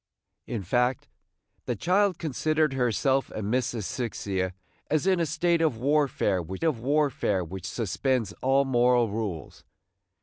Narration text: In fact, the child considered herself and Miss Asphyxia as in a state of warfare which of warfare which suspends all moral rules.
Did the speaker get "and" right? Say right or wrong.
right